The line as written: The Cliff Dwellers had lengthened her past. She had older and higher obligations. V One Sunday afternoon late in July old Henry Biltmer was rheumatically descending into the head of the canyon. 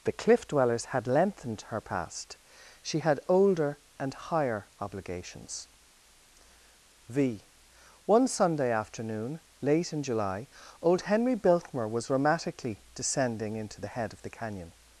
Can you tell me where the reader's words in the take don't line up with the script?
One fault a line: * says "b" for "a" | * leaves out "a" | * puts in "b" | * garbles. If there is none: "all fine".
all fine